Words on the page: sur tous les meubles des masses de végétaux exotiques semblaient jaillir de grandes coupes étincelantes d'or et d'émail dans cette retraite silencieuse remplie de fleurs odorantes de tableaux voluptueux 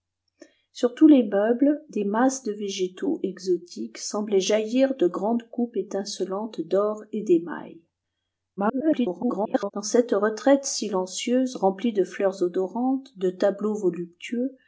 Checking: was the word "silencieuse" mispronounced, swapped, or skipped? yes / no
no